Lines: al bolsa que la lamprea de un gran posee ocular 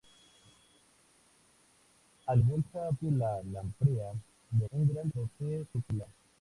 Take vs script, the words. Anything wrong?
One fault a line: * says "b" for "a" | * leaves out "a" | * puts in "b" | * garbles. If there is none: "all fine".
all fine